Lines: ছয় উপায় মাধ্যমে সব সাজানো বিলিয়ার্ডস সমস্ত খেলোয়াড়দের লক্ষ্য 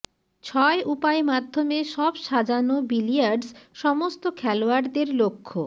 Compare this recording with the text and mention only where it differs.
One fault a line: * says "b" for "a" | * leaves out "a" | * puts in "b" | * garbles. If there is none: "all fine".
all fine